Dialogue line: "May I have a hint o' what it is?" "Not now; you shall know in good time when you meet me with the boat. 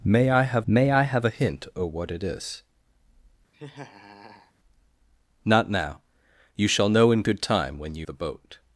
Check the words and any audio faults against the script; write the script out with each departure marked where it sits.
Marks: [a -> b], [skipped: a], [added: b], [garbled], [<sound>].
"May I have [added: may I have] a hint o' what it is?" [laugh] "Not now; you shall know in good time when you [skipped: meet me with] the boat.